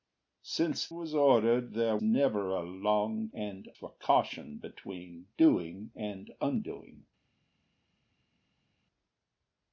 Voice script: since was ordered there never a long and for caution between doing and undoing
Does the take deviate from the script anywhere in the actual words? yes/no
no